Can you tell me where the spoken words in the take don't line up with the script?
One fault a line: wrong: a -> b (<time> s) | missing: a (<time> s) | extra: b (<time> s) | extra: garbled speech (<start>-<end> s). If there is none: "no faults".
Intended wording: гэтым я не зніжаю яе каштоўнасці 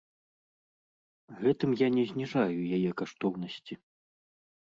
no faults